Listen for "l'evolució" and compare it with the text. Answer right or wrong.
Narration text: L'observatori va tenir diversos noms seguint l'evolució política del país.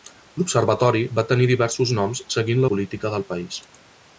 wrong